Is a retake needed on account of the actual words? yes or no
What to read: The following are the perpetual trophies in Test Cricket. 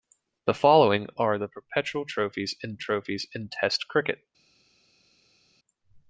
yes